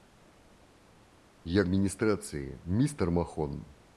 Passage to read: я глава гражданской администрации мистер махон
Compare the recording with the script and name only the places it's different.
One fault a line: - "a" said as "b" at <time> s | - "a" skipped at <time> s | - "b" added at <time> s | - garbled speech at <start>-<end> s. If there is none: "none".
- "глава гражданской" skipped at 1.6 s